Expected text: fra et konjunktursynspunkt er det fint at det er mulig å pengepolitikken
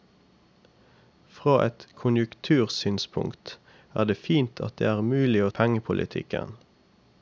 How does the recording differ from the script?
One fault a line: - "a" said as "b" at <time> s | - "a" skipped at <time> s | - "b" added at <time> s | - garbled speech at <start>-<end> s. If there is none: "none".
none